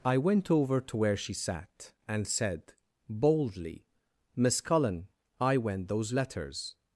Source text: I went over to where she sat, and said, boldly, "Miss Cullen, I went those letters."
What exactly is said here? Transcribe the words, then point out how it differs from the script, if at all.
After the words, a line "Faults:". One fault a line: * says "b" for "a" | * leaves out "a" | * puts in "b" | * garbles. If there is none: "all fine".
I went over to where she sat, and said, boldly, "Miss Cullen, I went those letters."
Faults:
all fine